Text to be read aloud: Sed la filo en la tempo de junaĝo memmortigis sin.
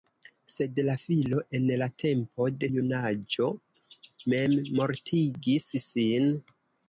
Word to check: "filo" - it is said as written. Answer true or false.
true